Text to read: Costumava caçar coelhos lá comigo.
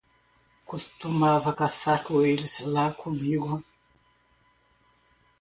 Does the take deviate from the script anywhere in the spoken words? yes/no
no